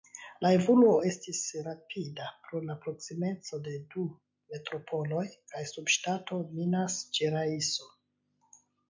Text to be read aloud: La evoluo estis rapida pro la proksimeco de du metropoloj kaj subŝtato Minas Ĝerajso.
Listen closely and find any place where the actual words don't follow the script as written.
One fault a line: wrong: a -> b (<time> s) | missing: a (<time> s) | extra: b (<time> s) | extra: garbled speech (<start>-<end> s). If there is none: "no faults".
no faults